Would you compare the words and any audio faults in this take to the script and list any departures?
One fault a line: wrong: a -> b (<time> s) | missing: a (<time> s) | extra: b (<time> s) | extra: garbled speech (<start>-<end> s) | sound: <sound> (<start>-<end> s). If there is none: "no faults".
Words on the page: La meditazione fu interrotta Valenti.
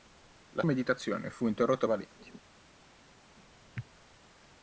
no faults